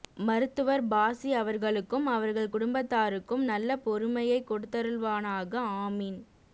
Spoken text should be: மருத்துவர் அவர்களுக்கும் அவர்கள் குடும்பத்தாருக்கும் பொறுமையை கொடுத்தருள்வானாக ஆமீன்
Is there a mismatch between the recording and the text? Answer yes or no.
yes